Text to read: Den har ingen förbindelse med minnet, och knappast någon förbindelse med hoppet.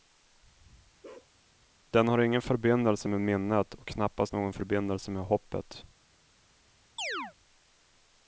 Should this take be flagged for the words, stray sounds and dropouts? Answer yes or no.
yes